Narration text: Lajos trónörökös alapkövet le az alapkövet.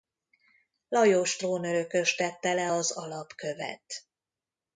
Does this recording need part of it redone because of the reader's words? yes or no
yes